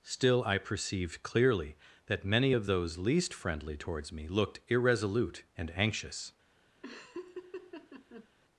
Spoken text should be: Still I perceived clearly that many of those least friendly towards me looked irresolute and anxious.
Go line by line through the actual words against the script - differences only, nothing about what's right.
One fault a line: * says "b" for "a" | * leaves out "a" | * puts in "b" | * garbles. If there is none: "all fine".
all fine